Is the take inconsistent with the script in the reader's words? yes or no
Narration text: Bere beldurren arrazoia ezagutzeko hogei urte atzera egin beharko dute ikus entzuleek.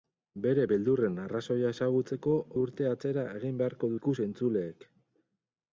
yes